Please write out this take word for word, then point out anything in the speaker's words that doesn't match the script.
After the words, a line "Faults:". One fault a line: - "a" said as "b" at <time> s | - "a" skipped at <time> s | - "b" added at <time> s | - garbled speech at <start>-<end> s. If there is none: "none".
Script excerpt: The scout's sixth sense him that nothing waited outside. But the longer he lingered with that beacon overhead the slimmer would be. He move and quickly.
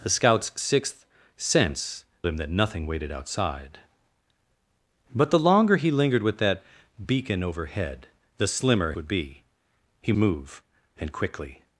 The scout's sixth sense him that nothing waited outside. But the longer he lingered with that beacon overhead the slimmer would be. He move and quickly.
Faults:
none